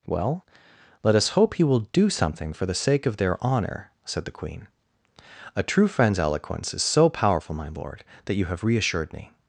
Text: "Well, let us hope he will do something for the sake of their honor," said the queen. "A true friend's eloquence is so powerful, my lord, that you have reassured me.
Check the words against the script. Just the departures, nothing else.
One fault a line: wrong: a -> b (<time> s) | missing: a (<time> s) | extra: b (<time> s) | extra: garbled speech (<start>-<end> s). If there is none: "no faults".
no faults